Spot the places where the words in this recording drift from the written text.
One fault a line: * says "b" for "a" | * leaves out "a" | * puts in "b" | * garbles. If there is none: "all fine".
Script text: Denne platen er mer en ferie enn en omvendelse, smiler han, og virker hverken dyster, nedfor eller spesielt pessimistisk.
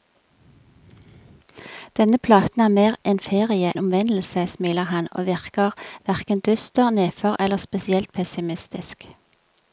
* leaves out "enn"